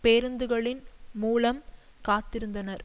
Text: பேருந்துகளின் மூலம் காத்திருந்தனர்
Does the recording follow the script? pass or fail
pass